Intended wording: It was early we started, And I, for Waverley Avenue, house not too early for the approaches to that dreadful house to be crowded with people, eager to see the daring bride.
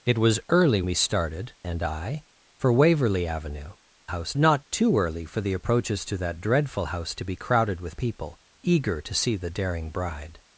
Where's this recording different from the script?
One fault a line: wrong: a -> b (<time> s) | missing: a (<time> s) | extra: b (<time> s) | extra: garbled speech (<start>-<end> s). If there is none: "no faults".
no faults